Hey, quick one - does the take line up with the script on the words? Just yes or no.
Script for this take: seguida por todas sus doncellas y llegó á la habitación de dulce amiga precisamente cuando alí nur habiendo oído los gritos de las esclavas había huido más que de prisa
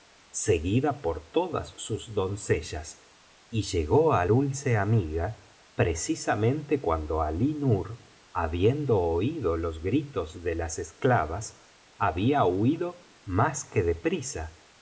no